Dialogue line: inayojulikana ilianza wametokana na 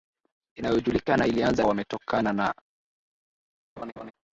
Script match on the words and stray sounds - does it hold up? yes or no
no